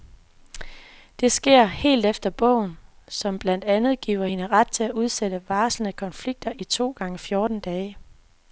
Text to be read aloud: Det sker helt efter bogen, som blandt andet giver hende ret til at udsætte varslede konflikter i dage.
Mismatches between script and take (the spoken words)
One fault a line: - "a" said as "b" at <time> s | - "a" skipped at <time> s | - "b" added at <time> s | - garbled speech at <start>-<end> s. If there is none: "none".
- "to gange fjorten" added at 6.6 s